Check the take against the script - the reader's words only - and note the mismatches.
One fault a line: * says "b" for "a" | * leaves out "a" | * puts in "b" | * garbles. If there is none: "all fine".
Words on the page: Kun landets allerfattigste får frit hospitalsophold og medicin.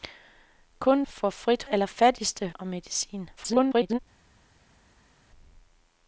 * leaves out "landets allerfattigste"
* says "allerfattigste" for "hospitalsophold"
* garbles